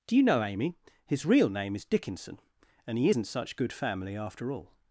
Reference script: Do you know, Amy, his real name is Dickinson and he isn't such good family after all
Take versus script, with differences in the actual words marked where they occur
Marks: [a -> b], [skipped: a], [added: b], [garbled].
Do you know, Amy, his real name is Dickinson and he isn't such good family after all